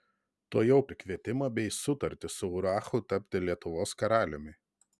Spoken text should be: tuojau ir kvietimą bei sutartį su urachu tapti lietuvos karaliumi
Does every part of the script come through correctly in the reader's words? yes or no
yes